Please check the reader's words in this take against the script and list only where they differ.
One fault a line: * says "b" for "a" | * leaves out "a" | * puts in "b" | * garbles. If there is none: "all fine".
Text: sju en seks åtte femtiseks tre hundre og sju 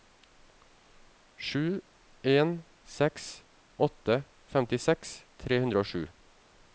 all fine